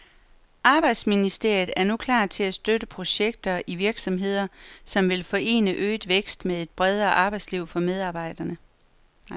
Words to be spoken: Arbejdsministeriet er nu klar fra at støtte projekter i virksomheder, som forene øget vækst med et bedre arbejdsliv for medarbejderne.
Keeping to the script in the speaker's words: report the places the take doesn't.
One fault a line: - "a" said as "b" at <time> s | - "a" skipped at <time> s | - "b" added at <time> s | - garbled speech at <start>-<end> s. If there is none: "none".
- "fra" said as "til" at 2.2 s
- "vil" added at 5.1 s